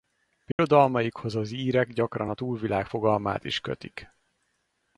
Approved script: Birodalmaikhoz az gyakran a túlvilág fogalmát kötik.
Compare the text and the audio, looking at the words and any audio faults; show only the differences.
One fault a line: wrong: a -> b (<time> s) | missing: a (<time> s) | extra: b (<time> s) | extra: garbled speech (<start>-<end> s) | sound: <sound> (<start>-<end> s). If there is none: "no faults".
sound: dropout (0.5-0.6 s)
extra: írek (1.5 s)
extra: is (3.4 s)